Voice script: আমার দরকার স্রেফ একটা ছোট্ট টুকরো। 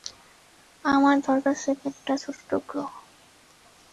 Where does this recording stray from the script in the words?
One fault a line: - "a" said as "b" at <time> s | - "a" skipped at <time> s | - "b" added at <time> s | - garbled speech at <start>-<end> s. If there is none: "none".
none